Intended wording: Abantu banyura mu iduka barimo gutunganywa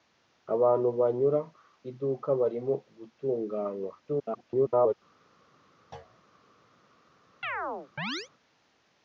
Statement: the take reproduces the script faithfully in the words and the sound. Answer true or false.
false